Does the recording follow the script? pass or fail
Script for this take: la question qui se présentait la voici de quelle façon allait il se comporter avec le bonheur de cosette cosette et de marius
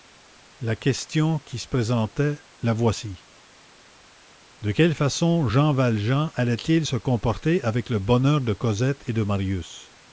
fail